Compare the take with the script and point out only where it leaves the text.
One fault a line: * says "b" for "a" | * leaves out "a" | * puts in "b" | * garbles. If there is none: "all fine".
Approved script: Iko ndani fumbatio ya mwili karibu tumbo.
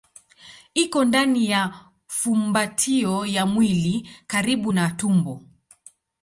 * puts in "ya"
* puts in "na"